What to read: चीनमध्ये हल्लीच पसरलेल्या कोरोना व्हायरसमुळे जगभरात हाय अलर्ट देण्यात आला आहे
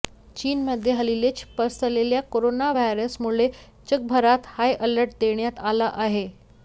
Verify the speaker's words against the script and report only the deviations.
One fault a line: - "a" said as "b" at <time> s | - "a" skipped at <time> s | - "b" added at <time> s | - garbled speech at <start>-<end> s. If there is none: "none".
none